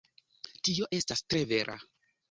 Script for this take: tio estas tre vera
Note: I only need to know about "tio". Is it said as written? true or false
true